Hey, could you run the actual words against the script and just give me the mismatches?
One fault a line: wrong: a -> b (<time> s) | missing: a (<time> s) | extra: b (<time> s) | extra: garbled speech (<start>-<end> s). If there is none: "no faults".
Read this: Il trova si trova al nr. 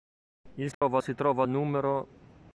no faults